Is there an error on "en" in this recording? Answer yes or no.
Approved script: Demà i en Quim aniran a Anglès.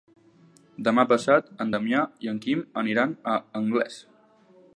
no